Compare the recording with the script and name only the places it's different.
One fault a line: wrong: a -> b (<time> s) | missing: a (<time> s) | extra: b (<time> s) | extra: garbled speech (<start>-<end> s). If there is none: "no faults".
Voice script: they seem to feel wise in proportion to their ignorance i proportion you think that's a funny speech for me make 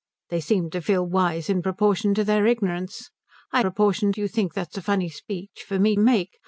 no faults